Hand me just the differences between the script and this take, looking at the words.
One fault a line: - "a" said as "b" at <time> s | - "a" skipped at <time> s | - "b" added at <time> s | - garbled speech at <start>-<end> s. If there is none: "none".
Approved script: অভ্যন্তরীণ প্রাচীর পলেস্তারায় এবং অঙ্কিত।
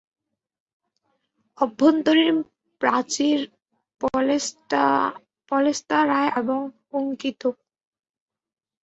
none